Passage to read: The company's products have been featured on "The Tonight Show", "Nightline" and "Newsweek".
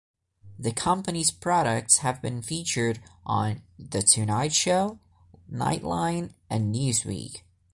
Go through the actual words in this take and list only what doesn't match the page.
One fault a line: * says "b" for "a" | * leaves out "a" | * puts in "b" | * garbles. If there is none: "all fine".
all fine